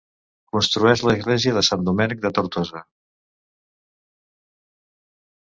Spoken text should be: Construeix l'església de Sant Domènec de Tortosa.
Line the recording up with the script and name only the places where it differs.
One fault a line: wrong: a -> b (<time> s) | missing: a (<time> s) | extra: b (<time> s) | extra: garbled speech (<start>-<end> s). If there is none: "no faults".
no faults